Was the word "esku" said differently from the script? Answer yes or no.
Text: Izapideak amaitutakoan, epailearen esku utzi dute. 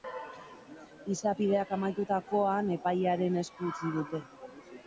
no